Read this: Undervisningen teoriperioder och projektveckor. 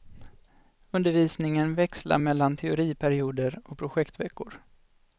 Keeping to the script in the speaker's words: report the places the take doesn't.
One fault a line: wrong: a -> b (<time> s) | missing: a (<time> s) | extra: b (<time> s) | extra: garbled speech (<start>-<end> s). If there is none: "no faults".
extra: växlar mellan (1.8 s)